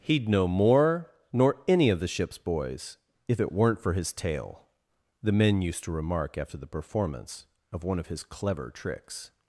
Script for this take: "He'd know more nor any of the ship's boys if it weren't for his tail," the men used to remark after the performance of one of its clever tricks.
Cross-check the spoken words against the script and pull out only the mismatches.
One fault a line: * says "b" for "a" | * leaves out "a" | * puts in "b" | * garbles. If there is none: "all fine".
* says "his" for "its"